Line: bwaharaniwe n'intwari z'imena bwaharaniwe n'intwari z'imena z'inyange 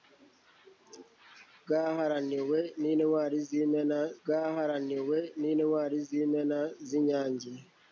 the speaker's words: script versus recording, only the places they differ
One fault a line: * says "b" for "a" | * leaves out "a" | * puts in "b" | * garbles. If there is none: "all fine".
all fine